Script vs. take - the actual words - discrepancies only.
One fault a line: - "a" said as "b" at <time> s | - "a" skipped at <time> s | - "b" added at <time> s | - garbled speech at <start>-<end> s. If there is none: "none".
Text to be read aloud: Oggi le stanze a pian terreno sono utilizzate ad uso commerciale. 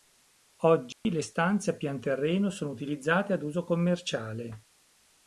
none